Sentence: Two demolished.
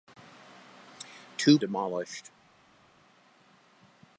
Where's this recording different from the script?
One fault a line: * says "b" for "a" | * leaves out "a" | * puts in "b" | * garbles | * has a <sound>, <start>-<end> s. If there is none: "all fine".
all fine